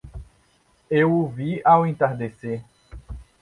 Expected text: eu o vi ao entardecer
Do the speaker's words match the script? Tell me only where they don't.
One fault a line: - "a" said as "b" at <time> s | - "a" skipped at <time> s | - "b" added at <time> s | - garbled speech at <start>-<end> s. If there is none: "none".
none